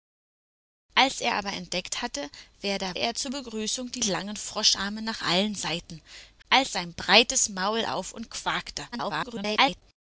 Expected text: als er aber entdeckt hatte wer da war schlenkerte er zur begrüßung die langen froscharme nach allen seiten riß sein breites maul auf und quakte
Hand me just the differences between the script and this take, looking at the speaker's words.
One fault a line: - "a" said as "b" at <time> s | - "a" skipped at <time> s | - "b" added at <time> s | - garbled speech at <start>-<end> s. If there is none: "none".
- "war schlenkerte" skipped at 3.0 s
- "riß" said as "als" at 6.5 s
- garbled speech at 8.9-9.8 s